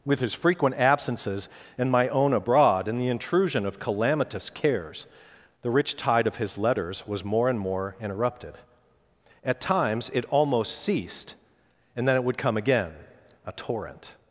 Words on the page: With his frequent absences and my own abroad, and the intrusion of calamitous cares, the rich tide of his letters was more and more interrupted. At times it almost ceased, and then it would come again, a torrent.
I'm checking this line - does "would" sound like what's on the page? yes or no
yes